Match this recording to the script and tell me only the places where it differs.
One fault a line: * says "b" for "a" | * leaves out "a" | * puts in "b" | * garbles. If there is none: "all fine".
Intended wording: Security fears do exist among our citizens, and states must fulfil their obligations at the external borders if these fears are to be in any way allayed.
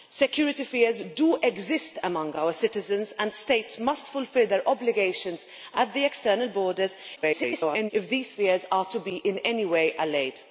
* garbles